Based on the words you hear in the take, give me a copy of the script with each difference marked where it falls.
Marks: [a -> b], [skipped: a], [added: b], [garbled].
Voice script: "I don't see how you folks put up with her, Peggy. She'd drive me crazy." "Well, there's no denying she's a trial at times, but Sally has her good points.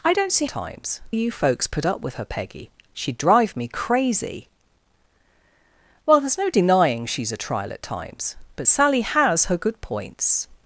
"I don't see [how -> times] you folks put up with her, Peggy. She'd drive me crazy." "Well, there's no denying she's a trial at times, but Sally has her good points.